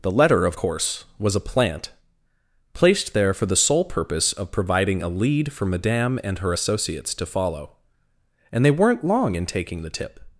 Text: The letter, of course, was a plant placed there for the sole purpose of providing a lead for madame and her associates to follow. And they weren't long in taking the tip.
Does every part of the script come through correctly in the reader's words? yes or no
yes